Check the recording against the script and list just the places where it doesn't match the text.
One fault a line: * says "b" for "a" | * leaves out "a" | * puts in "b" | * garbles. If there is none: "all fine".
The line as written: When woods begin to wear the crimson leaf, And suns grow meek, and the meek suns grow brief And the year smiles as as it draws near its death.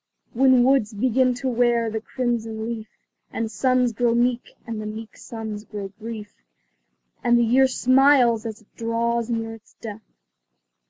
* leaves out "as"